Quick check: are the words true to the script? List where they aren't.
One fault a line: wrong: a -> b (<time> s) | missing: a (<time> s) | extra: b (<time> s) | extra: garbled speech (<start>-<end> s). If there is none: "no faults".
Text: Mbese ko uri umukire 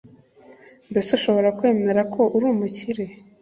extra: ushobora kwemera (1.2 s)